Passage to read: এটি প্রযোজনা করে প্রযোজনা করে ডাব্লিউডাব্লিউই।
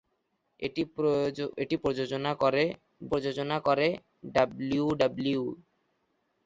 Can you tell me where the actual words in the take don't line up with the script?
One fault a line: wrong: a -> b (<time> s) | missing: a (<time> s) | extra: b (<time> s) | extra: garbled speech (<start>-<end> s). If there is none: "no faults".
no faults